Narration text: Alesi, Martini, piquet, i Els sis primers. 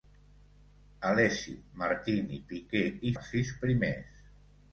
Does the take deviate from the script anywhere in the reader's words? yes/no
no